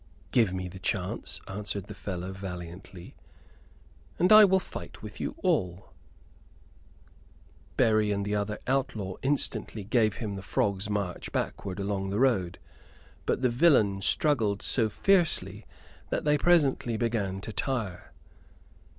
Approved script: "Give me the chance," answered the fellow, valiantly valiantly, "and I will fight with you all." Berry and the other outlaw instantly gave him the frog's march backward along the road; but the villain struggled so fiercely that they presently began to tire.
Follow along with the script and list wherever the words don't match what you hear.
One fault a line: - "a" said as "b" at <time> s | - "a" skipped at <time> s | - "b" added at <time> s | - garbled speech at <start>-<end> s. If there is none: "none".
- "valiantly" skipped at 3.1 s